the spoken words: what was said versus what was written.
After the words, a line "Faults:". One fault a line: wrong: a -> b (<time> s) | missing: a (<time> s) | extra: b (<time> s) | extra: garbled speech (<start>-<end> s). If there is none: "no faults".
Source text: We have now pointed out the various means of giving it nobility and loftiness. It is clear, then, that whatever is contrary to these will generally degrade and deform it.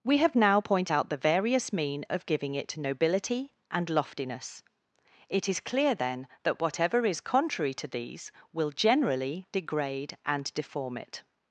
We have now point out the various mean of giving it nobility and loftiness. It is clear, then, that whatever is contrary to these will generally degrade and deform it.
Faults:
wrong: pointed -> point (0.6 s)
wrong: means -> mean (1.7 s)